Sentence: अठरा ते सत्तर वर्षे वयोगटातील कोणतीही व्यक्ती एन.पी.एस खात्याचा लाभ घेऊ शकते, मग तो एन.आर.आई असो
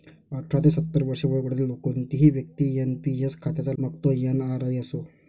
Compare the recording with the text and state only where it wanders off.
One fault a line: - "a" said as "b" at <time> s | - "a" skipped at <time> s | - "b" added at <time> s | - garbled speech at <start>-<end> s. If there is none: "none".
- "लाभ घेऊ शकते" skipped at 3.7 s